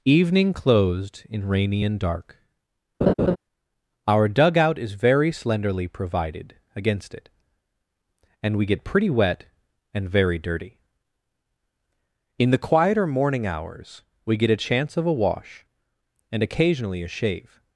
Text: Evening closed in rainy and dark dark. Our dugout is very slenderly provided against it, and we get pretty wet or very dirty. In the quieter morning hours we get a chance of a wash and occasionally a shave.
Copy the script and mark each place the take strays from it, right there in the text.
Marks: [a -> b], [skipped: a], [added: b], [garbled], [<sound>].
Evening closed in rainy and dark [skipped: dark.] [laugh] Our dugout is very slenderly provided against it, and we get pretty wet [or -> and] very dirty. In the quieter morning hours we get a chance of a wash and occasionally a shave.